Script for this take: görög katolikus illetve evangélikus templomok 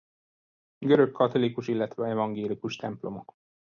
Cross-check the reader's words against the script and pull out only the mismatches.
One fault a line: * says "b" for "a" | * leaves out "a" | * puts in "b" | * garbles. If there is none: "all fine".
all fine